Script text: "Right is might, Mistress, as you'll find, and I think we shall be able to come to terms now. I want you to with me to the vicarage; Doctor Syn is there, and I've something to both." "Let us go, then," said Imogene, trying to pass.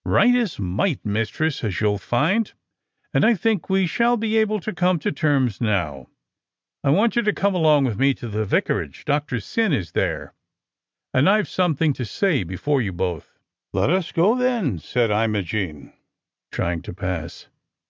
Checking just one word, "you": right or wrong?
right